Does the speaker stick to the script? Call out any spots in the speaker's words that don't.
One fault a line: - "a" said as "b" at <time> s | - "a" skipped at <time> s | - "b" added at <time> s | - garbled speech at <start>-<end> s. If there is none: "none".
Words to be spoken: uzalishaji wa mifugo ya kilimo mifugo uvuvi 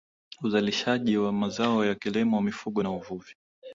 - "mifugo" said as "mazao" at 1.3 s
- "na" added at 2.8 s